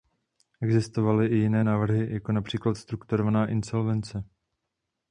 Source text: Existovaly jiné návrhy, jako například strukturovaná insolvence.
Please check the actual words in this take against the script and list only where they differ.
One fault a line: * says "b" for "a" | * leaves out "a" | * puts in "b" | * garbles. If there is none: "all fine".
* puts in "i"